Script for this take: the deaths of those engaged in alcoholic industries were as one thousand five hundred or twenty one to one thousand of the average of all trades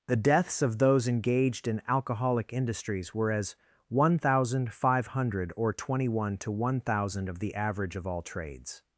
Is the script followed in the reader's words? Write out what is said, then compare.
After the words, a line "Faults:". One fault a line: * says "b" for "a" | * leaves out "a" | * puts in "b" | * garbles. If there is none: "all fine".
the deaths of those engaged in alcoholic industries were as one thousand five hundred or twenty one to one thousand of the average of all trades
Faults:
all fine